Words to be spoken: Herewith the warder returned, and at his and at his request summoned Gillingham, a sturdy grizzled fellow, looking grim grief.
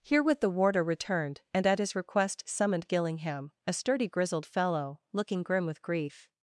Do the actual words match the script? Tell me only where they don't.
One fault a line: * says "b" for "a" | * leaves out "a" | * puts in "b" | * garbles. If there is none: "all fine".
* leaves out "and at his"
* puts in "with"